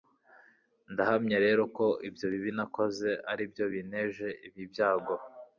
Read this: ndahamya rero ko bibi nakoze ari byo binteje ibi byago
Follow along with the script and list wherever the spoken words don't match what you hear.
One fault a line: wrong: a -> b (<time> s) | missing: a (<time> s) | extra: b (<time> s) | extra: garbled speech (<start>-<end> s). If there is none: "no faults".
extra: ibyo (2.1 s)